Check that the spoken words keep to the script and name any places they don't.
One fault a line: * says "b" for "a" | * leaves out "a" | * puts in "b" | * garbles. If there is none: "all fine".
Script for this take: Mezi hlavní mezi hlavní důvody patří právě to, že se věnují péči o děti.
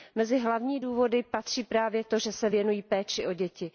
* leaves out "mezi hlavní"